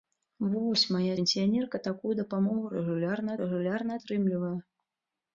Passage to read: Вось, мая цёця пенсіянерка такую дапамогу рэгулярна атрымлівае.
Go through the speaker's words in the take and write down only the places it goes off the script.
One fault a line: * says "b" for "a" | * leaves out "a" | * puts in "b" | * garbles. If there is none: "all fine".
* leaves out "цёця"
* puts in "рэгулярна"